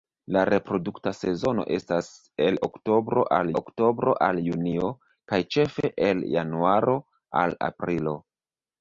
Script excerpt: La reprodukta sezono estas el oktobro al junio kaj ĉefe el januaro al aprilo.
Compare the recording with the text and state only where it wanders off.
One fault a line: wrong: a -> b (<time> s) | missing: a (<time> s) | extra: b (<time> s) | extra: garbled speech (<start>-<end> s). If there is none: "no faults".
extra: oktobro al (3.6 s)